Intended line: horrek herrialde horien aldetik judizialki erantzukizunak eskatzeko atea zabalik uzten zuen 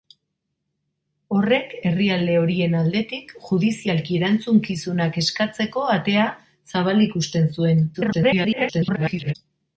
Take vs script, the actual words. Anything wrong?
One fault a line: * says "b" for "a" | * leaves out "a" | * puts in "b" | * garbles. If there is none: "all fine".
* garbles